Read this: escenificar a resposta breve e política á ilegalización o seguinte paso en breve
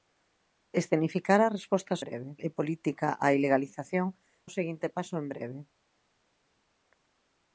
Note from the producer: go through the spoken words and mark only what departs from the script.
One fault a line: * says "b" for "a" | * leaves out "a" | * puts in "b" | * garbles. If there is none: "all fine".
all fine